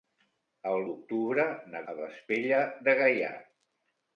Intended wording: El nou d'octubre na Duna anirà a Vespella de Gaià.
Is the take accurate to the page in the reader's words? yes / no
no